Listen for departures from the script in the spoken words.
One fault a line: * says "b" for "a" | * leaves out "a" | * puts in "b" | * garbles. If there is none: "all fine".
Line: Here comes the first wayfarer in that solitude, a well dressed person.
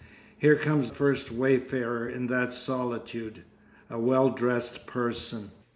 * leaves out "the"